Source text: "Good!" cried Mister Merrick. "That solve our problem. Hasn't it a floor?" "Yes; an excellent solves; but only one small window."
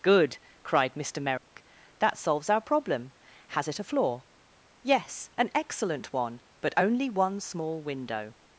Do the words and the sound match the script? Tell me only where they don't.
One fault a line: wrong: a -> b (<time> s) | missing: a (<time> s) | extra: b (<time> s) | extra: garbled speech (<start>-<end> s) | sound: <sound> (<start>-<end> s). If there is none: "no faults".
sound: dropout (1.4-1.5 s)
wrong: solve -> solves (2.2 s)
wrong: Hasn't -> Has (3.5 s)
wrong: solves -> one (6.1 s)